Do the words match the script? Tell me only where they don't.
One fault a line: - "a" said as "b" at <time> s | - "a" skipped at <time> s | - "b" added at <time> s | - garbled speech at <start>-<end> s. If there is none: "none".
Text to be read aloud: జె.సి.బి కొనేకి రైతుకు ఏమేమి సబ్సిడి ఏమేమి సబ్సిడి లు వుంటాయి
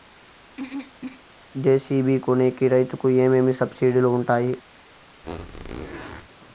- "ఏమేమి సబ్సిడి" skipped at 4.0 s